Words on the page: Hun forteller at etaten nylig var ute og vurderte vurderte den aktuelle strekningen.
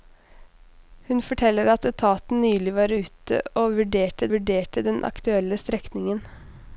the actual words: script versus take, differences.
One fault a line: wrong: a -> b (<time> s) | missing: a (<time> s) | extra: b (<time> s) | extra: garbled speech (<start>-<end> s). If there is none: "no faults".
no faults